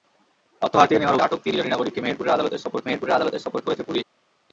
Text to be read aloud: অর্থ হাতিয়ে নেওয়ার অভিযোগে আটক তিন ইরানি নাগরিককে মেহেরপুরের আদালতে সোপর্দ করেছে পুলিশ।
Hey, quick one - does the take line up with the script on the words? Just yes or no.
no